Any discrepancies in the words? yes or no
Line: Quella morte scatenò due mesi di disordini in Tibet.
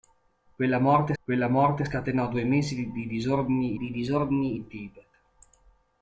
yes